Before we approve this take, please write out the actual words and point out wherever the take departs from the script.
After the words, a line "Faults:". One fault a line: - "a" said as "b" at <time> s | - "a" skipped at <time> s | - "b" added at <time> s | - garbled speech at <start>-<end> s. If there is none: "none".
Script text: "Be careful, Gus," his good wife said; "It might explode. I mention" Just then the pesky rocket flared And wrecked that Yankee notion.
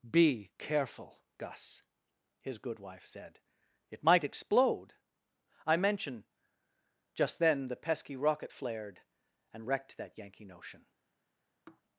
"Be careful, Gus," his good wife said; "It might explode. I mention" Just then the pesky rocket flared And wrecked that Yankee notion.
Faults:
none